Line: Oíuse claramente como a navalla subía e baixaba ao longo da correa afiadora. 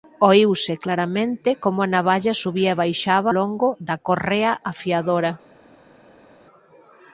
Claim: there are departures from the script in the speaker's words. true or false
true